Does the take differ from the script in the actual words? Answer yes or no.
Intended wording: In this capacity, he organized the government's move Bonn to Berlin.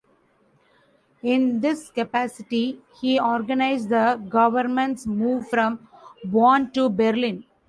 yes